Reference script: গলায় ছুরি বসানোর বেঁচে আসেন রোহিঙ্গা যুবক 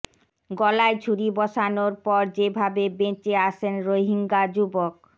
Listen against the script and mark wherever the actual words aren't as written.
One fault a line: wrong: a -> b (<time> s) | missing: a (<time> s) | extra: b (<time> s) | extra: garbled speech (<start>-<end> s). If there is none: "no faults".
extra: পর যেভাবে (2.0 s)